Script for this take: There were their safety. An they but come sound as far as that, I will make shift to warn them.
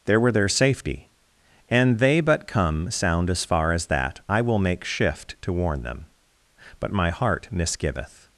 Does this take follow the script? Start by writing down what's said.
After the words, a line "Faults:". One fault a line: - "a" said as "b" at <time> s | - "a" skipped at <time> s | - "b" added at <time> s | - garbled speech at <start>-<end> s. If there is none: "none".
There were their safety. An they but come sound as far as that, I will make shift to warn them. But my heart misgiveth
Faults:
- "But my heart misgiveth" added at 6.8 s